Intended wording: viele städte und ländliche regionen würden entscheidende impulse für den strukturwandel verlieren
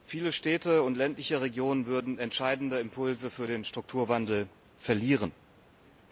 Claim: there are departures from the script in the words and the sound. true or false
false